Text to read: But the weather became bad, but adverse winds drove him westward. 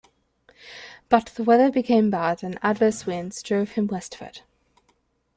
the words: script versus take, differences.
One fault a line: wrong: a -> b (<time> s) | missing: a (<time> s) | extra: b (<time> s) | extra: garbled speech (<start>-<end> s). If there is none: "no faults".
wrong: but -> and (2.4 s)